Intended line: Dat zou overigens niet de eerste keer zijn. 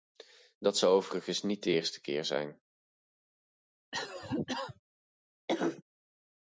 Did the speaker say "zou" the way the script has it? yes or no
yes